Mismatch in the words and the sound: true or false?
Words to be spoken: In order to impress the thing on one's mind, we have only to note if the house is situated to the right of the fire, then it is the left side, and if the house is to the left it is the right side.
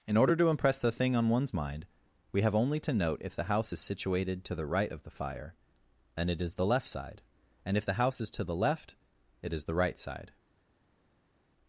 true